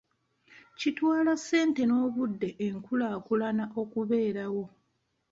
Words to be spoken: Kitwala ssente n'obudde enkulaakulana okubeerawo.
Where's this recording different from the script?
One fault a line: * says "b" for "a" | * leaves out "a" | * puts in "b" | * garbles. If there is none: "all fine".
all fine